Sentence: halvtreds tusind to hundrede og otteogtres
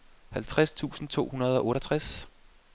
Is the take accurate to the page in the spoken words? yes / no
yes